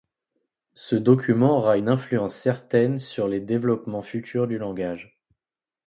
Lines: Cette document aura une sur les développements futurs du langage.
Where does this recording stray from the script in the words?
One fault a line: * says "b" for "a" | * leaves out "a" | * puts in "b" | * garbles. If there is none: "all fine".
* says "Ce" for "Cette"
* puts in "influence certaine"